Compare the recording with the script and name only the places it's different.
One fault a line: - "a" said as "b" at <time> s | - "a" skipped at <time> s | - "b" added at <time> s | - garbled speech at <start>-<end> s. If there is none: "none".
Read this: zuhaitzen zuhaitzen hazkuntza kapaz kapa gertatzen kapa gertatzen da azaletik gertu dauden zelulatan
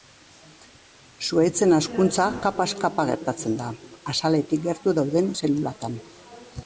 - "zuhaitzen" skipped at 1.8 s
- "kapa gertatzen" skipped at 3.6 s